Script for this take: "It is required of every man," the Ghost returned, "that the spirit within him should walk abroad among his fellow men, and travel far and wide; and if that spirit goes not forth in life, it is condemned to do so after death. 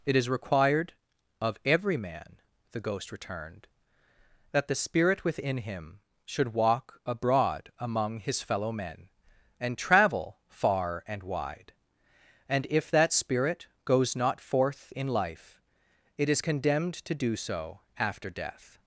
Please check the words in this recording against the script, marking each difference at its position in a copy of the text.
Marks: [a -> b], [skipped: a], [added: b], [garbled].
"It is required of every man," the Ghost returned, "that the spirit within him should walk abroad among his fellow men, and travel far and wide; and if that spirit goes not forth in life, it is condemned to do so after death.